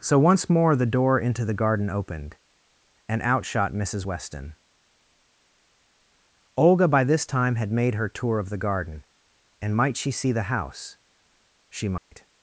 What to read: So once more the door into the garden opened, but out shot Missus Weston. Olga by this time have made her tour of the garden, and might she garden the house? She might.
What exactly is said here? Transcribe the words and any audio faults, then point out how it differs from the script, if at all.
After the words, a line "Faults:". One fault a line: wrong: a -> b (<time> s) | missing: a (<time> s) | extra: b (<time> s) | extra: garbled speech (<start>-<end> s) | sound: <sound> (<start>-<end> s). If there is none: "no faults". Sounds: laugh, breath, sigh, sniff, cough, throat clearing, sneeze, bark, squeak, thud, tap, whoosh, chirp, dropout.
So once more the door into the garden opened, and out shot Missus Weston. Olga by this time had made her tour of the garden, and might she see the house? She might.
Faults:
wrong: but -> and (3.1 s)
wrong: have -> had (7.6 s)
wrong: garden -> see (10.1 s)
sound: dropout (12.0-12.1 s)